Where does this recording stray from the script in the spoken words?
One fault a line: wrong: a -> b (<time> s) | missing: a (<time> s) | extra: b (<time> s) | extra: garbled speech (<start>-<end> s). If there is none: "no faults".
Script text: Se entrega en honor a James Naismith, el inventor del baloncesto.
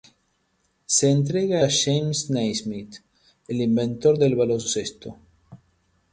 missing: en honor (1.6 s)